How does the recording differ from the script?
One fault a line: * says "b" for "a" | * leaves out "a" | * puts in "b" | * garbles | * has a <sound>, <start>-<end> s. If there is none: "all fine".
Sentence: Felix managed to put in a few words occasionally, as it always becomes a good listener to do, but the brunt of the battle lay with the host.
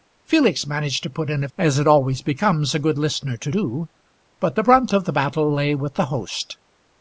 * leaves out "few words occasionally"